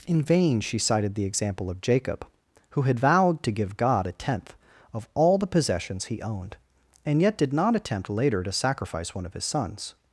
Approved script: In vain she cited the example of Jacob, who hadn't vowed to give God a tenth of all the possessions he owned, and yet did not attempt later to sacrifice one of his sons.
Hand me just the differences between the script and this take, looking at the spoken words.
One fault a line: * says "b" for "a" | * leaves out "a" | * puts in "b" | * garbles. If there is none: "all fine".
* says "had" for "hadn't"